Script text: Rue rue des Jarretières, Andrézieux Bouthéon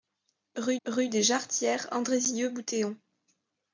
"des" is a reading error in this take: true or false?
false